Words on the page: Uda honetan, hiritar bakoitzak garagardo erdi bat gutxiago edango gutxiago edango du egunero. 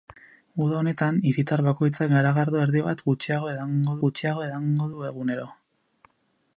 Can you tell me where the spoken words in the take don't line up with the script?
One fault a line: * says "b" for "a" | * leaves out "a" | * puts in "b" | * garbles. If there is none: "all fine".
all fine